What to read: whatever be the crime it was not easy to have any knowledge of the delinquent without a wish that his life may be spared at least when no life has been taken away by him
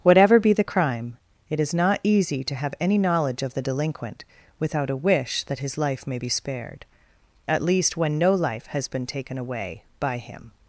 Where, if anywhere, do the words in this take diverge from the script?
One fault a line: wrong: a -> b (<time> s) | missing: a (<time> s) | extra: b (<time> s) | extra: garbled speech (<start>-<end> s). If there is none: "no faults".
wrong: was -> is (1.6 s)